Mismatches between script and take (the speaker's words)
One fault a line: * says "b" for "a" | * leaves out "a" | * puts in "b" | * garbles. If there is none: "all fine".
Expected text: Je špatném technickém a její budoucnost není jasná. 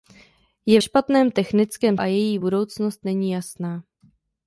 all fine